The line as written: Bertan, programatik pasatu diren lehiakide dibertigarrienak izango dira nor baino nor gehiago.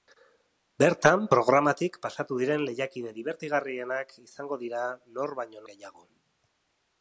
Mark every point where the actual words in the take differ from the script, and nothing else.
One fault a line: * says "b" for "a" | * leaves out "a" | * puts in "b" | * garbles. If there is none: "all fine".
* leaves out "nor"